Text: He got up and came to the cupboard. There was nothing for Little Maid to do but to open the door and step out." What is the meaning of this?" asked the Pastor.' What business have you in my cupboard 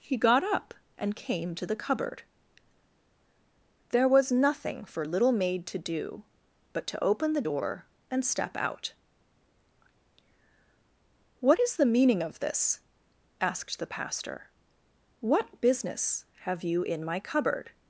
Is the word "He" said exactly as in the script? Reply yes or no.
yes